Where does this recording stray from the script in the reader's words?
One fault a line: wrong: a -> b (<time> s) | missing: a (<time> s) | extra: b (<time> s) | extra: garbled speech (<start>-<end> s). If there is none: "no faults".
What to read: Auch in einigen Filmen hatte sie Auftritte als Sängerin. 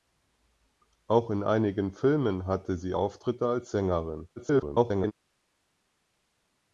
extra: garbled speech (4.4-5.1 s)